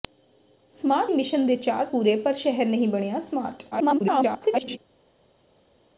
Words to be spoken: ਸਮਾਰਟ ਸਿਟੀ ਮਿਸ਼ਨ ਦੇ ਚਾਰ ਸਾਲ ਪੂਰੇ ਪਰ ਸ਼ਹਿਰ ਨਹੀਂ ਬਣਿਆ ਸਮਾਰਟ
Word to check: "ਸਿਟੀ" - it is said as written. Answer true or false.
false